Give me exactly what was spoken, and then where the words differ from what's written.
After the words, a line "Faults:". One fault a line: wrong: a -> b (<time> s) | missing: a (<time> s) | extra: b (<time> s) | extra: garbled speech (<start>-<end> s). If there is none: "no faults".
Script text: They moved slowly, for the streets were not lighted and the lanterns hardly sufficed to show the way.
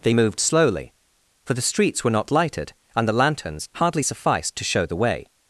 They moved slowly, for the streets were not lighted and the lanterns hardly sufficed to show the way.
Faults:
no faults